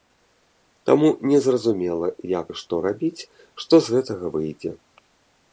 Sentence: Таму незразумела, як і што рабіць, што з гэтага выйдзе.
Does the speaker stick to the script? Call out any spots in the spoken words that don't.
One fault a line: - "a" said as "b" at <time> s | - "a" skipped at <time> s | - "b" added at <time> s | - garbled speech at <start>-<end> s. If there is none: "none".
none